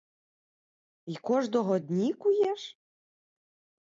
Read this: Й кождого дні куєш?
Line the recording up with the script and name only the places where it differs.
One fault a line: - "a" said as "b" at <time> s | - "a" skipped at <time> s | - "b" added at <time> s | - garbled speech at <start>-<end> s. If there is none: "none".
none